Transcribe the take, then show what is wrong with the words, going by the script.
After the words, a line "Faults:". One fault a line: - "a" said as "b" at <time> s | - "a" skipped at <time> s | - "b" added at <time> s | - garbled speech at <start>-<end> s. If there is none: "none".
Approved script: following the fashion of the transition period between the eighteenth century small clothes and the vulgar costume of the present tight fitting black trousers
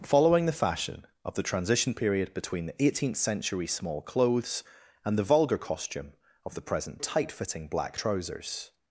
following the fashion of the transition period between the eighteenth century small clothes and the vulgar costume of the present tight fitting black trousers
Faults:
none